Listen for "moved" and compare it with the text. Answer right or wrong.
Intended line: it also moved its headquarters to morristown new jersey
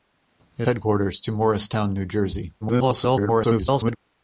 wrong